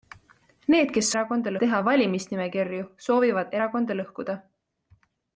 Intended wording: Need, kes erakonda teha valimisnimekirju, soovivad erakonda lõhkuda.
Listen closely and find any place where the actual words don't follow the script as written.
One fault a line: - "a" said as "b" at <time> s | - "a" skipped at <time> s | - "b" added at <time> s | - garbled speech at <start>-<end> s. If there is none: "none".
none